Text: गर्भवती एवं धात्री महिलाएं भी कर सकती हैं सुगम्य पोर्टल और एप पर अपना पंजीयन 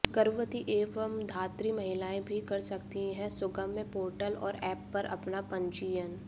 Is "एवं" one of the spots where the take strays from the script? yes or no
no